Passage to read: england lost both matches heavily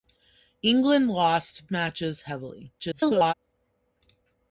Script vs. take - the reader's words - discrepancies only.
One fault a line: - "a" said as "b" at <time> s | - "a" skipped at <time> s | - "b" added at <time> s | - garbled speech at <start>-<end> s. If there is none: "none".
- "both" skipped at 1.7 s
- garbled speech at 2.8-3.3 s